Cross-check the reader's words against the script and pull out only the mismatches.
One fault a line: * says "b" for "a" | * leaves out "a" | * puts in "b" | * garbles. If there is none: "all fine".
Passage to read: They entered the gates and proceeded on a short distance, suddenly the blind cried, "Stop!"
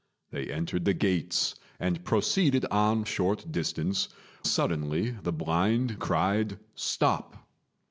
all fine